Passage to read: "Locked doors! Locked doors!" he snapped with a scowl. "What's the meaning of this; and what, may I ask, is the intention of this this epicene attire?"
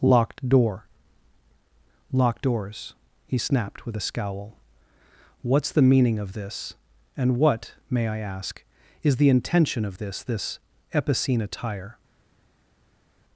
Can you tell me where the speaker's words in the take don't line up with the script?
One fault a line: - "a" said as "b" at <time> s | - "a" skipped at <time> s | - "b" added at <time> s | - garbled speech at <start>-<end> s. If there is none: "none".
- "doors" said as "door" at 0.5 s